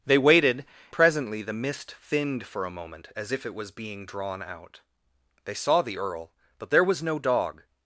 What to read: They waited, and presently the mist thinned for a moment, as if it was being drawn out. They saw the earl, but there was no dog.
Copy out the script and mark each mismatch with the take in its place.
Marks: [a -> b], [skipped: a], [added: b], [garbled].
They waited, [skipped: and] presently the mist thinned for a moment, as if it was being drawn out. They saw the earl, but there was no dog.